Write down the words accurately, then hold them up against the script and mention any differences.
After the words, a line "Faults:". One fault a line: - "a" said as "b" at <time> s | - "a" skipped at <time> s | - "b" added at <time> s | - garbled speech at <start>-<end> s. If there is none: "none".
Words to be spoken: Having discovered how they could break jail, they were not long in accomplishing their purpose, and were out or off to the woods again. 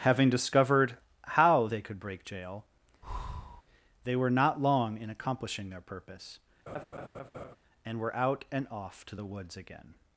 Having discovered how they could break jail, they were not long in accomplishing their purpose, and were out and off to the woods again.
Faults:
- "or" said as "and" at 8.5 s